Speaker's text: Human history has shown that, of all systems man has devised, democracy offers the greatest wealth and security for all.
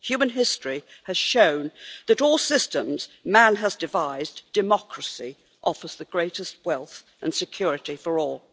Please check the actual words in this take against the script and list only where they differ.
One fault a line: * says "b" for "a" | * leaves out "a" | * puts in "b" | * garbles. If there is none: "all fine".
all fine